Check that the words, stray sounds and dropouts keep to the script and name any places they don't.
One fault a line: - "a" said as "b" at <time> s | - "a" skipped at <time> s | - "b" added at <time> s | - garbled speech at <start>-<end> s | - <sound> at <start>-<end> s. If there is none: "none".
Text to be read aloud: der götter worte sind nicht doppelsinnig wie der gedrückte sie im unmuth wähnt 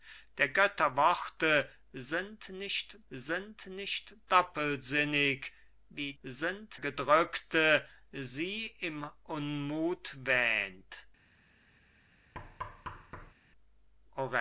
- "sind nicht" added at 3.1 s
- "der" said as "sind" at 6.2 s
- thud at 12.3-13.3 s